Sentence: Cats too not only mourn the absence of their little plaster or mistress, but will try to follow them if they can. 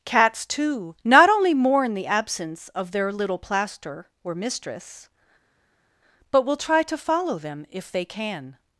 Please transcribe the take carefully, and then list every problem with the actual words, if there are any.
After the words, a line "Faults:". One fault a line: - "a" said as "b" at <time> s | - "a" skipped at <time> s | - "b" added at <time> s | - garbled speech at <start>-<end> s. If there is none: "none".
Cats too not only mourn the absence of their little plaster or mistress, but will try to follow them if they can.
Faults:
none